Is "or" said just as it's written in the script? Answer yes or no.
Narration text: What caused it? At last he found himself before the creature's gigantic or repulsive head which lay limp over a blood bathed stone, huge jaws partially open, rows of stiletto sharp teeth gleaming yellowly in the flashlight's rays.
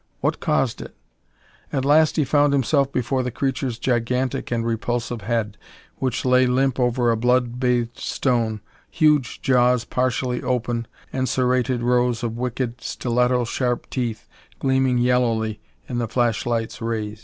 no